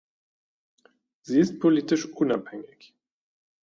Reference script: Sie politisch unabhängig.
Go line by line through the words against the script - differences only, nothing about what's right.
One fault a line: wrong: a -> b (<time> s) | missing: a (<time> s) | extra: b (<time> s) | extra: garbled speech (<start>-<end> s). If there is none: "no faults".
extra: ist (1.4 s)